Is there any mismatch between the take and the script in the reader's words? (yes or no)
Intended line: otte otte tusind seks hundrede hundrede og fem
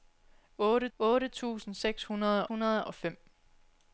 no